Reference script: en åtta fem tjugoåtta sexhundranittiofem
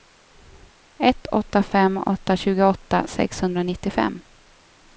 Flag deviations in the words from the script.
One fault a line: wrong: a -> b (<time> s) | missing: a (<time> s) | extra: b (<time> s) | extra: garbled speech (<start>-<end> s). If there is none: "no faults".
wrong: en -> ett (1.0 s)
extra: åtta (2.0 s)